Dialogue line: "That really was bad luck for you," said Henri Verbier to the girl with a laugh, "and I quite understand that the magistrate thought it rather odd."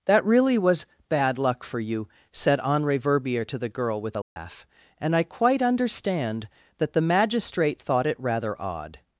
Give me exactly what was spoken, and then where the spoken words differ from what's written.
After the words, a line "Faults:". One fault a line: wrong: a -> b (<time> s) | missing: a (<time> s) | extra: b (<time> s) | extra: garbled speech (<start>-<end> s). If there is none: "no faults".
"That really was bad luck for you," said Henri Verbier to the girl with a laugh, "and I quite understand that the magistrate thought it rather odd."
Faults:
no faults